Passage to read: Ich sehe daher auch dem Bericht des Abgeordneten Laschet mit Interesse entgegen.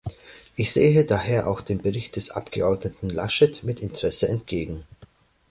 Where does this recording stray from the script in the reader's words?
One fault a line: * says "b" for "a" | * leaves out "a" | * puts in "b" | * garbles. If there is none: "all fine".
all fine